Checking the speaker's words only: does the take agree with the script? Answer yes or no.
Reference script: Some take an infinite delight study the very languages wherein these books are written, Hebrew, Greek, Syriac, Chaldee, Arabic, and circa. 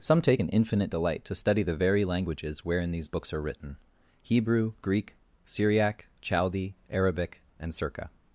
no